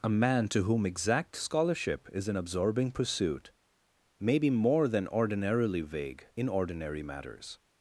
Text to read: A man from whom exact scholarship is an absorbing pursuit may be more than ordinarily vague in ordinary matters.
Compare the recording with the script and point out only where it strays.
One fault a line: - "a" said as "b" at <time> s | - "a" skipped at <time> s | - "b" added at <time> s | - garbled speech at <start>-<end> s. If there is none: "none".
- "from" said as "to" at 0.5 s